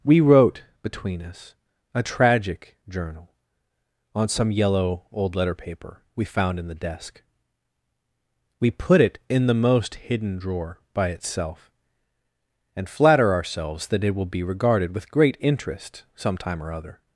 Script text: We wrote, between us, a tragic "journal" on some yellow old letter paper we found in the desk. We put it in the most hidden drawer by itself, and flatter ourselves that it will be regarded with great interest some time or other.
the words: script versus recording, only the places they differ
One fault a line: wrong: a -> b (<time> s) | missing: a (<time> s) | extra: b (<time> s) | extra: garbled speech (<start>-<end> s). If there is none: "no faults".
no faults